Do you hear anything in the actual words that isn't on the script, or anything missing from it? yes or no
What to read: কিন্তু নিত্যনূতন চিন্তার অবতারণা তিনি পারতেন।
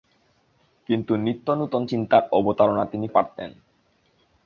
no